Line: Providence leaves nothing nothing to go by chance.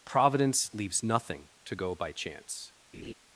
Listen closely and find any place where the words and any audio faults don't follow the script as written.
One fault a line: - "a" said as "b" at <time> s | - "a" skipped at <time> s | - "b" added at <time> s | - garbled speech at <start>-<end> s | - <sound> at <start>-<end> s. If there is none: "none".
- "nothing" skipped at 1.5 s
- laugh at 2.9-3.1 s